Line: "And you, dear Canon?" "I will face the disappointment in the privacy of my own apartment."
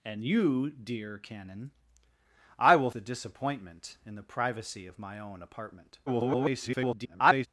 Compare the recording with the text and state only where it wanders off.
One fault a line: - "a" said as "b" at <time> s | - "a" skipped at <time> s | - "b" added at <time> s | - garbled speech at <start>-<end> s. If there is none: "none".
- "face" skipped at 2.9 s
- garbled speech at 6.1-7.5 s